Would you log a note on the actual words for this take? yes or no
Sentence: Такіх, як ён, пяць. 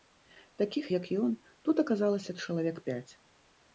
yes